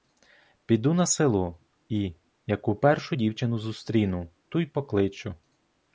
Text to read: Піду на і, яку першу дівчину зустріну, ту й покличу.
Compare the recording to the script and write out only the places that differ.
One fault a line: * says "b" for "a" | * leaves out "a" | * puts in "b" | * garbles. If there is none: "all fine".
* puts in "село"